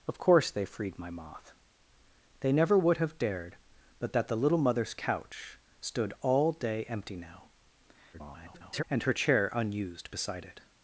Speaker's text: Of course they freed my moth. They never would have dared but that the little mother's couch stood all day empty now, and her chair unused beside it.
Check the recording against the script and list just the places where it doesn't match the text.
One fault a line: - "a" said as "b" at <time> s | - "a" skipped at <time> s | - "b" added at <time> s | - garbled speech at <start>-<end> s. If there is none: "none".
- garbled speech at 8.1-8.8 s